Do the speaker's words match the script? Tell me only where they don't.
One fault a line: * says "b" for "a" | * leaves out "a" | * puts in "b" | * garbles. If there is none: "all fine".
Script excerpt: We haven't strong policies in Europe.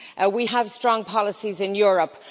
* says "have" for "haven't"